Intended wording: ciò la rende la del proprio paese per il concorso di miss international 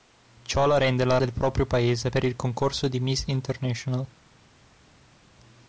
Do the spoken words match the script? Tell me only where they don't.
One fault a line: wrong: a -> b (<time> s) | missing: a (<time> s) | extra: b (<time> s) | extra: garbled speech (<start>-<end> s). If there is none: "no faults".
no faults